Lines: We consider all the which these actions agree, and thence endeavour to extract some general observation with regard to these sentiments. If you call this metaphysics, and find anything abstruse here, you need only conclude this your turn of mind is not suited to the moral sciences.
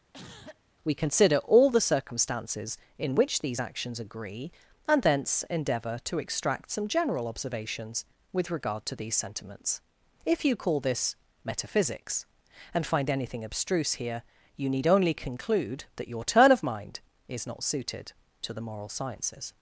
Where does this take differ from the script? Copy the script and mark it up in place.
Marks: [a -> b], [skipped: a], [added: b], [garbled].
We consider all the [added: circumstances in] which these actions agree, and thence endeavour to extract some general [observation -> observations] with regard to these sentiments. If you call this metaphysics, and find anything abstruse here, you need only conclude [this -> that] your turn of mind is not suited to the moral sciences.